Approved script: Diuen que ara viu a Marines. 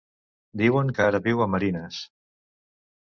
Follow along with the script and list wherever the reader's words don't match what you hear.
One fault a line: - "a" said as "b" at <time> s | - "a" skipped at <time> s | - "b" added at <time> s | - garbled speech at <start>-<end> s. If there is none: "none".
none